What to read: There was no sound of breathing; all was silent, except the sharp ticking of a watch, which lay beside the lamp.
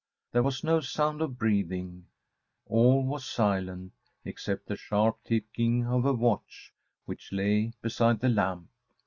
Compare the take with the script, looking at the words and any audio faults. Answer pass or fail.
pass